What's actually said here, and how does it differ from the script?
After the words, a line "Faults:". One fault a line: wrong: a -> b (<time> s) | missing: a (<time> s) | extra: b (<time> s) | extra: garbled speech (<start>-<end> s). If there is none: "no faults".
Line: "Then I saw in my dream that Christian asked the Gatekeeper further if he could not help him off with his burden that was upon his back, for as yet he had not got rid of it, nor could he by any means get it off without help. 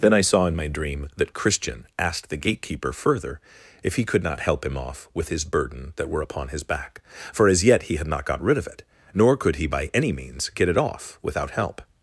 "Then I saw in my dream that Christian asked the Gatekeeper further if he could not help him off with his burden that were upon his back, for as yet he had not got rid of it, nor could he by any means get it off without help.
Faults:
wrong: was -> were (6.1 s)